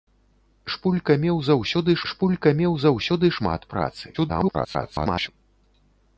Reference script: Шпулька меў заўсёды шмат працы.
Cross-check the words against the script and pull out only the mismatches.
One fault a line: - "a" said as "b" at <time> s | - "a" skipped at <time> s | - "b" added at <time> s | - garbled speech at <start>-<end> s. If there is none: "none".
- "шпулька меў заўсёды" added at 2.1 s
- garbled speech at 4.1-5.3 s